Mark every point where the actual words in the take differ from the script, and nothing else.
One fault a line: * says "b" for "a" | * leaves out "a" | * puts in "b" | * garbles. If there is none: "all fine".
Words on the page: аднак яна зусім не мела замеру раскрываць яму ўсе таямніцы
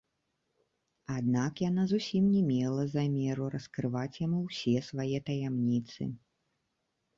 * puts in "свае"